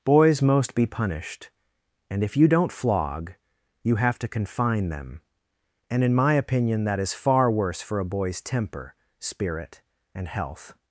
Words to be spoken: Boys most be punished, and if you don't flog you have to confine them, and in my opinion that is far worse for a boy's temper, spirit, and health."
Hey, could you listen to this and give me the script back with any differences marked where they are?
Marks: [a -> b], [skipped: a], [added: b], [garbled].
Boys most be punished, and if you don't flog you have to confine them, and in my opinion that is far worse for a boy's temper, spirit, and health."